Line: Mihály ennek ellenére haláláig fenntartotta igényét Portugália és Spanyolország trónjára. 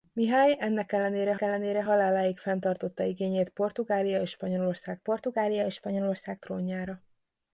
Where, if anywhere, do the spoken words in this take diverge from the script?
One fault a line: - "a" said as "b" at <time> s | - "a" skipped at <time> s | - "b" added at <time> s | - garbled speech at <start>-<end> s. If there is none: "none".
- "ellenére" added at 1.4 s
- "Portugália és Spanyolország" added at 5.0 s